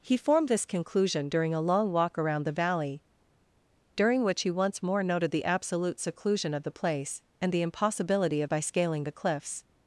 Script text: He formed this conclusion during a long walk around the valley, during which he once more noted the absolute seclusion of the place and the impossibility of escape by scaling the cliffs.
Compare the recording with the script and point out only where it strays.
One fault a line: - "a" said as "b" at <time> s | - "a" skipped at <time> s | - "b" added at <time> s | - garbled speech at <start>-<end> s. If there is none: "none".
- "escape" skipped at 8.5 s